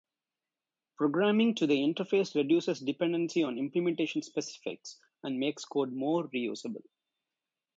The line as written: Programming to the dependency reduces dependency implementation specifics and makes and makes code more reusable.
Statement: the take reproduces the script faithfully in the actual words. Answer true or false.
false